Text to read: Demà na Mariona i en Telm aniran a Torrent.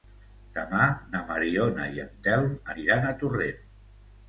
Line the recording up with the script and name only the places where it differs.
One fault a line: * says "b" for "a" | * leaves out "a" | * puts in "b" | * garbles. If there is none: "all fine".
all fine